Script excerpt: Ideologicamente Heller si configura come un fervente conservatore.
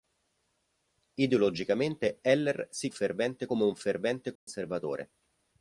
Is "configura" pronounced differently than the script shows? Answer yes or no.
yes